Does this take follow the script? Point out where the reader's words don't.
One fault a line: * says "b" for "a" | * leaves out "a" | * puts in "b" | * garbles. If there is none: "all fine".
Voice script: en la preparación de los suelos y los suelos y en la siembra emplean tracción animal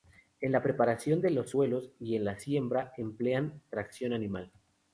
* leaves out "los suelos y"